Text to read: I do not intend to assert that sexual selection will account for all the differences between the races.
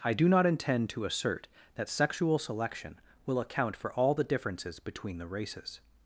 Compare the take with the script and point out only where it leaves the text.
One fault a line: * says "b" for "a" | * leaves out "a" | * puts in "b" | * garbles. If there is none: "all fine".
all fine